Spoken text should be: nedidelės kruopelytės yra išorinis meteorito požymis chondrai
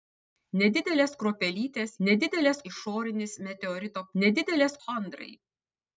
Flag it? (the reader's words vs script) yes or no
yes